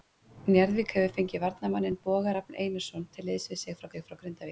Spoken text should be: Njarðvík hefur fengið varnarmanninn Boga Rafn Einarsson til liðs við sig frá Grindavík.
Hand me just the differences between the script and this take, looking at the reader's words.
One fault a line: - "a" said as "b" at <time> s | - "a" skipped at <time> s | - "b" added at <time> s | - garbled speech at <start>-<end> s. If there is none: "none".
- "sig frá" added at 3.9 s